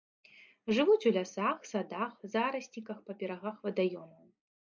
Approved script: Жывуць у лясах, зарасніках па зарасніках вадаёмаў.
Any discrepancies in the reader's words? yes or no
yes